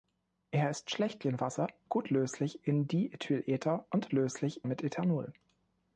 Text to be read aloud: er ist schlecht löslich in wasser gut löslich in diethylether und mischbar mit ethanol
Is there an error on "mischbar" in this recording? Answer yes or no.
yes